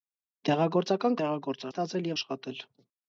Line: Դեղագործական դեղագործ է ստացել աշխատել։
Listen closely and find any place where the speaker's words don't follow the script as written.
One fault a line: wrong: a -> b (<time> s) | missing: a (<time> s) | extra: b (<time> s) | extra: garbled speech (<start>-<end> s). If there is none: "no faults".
no faults